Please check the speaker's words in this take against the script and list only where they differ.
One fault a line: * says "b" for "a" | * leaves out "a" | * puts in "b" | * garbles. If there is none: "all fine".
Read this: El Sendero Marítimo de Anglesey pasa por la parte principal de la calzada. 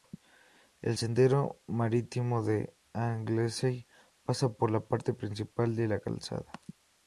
all fine